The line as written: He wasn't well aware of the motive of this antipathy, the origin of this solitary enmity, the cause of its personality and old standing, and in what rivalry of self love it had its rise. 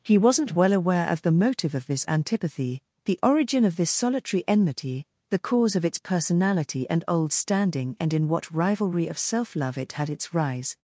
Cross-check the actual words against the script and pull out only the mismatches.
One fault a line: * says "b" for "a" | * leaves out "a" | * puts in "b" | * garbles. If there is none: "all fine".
all fine